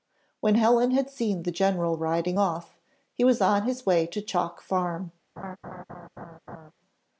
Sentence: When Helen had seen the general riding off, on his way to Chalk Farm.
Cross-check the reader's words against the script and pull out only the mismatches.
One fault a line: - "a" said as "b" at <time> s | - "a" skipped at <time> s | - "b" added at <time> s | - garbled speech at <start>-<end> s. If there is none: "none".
- "he was" added at 3.1 s